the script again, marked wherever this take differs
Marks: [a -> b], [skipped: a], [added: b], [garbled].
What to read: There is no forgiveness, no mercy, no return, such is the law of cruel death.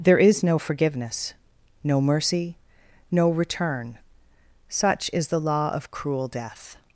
There is no forgiveness, no mercy, no return, such is the law of cruel death.